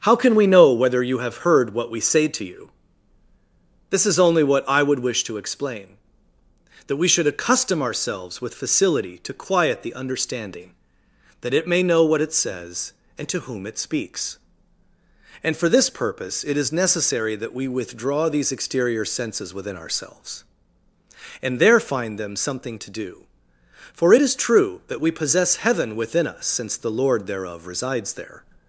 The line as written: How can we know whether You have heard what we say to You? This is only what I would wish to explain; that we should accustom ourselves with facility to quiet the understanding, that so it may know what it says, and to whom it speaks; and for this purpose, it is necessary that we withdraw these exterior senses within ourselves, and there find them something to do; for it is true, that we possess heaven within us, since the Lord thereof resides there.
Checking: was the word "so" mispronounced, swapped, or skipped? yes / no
yes